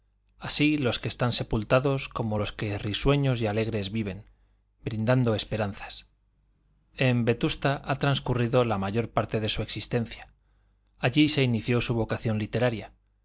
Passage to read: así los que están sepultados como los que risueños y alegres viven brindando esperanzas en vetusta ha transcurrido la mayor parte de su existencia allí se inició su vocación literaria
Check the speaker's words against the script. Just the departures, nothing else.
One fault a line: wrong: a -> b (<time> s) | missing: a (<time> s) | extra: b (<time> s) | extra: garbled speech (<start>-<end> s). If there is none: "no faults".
no faults